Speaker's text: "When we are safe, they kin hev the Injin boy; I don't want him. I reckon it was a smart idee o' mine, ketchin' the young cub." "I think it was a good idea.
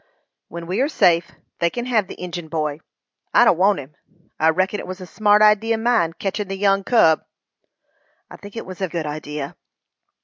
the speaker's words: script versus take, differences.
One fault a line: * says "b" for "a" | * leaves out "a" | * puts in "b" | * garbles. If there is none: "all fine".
all fine